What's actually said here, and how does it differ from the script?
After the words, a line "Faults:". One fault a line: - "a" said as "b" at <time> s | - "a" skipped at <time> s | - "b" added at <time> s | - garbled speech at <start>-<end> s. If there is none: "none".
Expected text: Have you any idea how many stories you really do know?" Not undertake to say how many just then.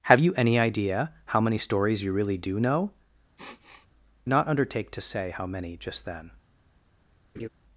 Have you any idea how many stories you really do know?" Not undertake to say how many just then.
Faults:
none